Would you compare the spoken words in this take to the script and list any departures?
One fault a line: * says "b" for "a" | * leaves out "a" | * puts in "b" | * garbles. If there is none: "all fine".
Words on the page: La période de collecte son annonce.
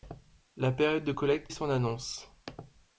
all fine